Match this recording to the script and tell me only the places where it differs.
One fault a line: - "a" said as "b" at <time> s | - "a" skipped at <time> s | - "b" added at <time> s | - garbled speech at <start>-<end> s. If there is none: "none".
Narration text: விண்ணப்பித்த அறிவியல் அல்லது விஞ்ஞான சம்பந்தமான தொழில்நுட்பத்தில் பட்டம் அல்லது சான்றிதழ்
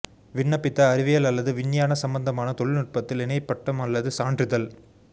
- "இணை" added at 3.2 s